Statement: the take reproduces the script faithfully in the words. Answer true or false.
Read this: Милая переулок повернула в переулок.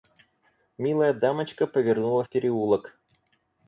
false